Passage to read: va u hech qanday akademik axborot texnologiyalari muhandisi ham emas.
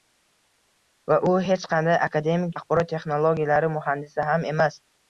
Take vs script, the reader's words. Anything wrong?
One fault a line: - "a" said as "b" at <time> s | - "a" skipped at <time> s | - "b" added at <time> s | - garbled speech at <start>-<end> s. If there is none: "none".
none